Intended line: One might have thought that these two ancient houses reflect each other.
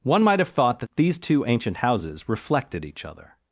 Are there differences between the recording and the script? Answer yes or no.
yes